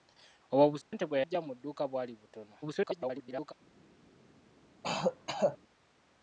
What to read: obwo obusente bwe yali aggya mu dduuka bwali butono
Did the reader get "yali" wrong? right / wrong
wrong